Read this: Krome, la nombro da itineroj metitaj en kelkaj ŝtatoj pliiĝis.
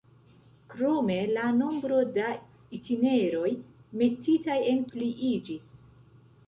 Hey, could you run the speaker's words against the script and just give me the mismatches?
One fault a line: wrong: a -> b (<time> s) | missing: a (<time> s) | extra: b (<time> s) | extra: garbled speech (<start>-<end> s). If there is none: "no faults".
missing: kelkaj ŝtatoj (4.8 s)